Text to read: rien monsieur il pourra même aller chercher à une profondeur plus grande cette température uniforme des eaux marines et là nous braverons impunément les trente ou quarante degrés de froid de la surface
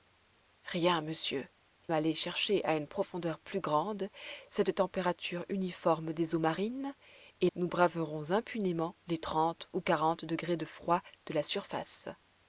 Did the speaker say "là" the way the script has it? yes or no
no